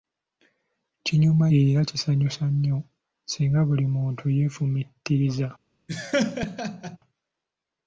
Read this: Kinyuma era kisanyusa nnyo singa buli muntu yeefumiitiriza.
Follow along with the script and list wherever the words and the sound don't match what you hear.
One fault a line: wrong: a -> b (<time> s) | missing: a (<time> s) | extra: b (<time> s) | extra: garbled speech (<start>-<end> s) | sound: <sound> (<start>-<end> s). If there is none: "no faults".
sound: laugh (5.9-7.0 s)